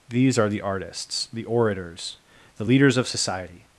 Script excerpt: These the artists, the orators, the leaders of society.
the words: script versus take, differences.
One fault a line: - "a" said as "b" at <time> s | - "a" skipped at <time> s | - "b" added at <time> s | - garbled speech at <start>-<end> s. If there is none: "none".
- "are" added at 0.4 s